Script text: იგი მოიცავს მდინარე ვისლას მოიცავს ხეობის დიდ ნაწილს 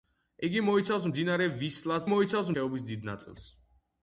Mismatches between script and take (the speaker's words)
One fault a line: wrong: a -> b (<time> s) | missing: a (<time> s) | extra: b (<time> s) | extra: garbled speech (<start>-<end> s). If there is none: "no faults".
no faults